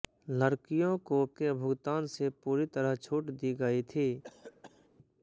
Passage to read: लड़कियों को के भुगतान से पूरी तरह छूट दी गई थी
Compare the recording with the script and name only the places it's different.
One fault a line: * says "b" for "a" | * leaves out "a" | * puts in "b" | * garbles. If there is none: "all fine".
all fine